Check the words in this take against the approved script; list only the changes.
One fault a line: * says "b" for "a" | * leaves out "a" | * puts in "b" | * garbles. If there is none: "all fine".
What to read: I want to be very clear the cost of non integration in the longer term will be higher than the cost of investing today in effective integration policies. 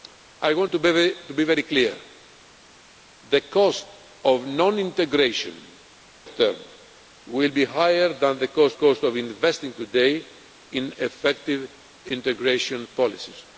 * leaves out "in the longer"
* puts in "cost"